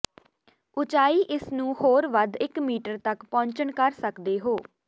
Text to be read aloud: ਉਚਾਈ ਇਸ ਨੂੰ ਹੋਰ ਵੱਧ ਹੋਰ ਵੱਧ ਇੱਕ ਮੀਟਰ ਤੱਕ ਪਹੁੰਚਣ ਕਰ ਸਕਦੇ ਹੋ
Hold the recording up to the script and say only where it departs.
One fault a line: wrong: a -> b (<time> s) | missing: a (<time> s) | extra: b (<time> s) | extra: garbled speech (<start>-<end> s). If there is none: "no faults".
missing: ਹੋਰ ਵੱਧ (2.4 s)